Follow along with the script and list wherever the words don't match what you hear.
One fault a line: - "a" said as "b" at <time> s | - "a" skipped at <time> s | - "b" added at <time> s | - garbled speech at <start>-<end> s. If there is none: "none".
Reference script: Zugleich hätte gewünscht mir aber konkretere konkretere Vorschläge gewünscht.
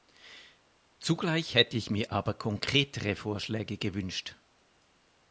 - "gewünscht" said as "ich" at 1.8 s
- "konkretere" skipped at 3.2 s